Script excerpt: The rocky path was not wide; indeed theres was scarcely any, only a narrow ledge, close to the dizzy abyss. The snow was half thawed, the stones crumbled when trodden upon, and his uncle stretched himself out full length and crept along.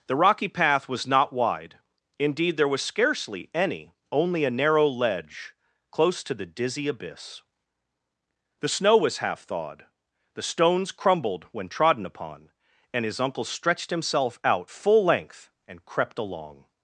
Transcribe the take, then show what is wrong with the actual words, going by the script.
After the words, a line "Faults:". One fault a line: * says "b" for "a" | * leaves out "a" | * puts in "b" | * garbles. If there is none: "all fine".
The rocky path was not wide; indeed there was scarcely any, only a narrow ledge, close to the dizzy abyss. The snow was half thawed, the stones crumbled when trodden upon, and his uncle stretched himself out full length and crept along.
Faults:
* says "there" for "theres"